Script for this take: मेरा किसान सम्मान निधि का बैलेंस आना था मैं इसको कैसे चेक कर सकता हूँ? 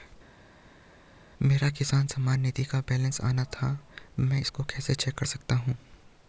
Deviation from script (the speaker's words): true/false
false